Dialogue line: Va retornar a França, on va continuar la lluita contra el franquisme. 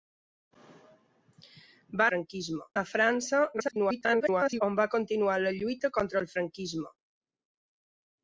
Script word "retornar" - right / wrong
wrong